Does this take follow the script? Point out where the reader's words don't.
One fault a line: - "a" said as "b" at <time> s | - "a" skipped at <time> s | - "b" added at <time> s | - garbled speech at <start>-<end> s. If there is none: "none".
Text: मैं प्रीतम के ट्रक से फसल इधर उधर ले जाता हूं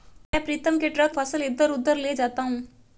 - "से" skipped at 1.1 s